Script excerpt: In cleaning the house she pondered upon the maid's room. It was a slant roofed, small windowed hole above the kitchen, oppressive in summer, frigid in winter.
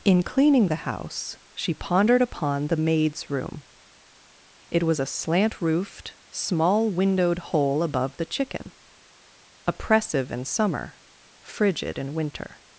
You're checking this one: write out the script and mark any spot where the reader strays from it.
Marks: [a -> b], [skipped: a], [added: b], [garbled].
In cleaning the house she pondered upon the maid's room. It was a slant roofed, small windowed hole above the [kitchen, -> chicken] oppressive in summer, frigid in winter.